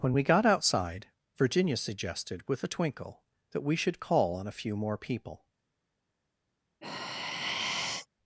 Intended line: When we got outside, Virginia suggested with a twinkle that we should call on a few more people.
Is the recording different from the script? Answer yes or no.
no